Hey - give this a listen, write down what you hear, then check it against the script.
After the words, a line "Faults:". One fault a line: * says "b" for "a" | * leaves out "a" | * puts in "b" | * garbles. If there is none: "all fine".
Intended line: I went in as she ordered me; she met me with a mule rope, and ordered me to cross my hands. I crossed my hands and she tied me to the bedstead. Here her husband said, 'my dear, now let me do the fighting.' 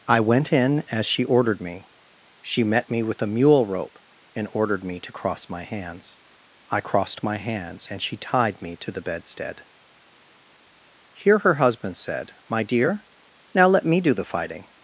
I went in as she ordered me; she met me with a mule rope, and ordered me to cross my hands. I crossed my hands and she tied me to the bedstead. Here her husband said, 'my dear, now let me do the fighting.'
Faults:
all fine